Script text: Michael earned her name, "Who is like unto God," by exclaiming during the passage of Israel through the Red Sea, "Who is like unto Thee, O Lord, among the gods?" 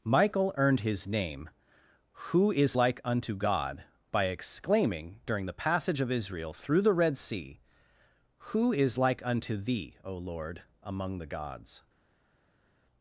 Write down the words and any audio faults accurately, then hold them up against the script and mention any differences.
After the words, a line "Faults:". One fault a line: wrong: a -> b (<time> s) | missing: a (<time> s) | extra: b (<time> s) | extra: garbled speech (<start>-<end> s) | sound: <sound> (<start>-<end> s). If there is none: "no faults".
Michael earned his name, "Who is like unto God," by exclaiming during the passage of Israel through the Red Sea, "Who is like unto Thee, O Lord, among the gods?"
Faults:
wrong: her -> his (0.8 s)